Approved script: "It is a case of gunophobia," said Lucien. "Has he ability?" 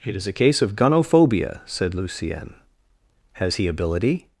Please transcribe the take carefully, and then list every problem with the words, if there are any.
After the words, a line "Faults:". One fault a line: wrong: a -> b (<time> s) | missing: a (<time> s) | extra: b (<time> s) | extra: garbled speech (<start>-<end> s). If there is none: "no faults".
"It is a case of gunophobia," said Lucien. "Has he ability?"
Faults:
no faults